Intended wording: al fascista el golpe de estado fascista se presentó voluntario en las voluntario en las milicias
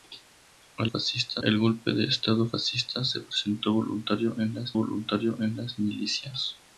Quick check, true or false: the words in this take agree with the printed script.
true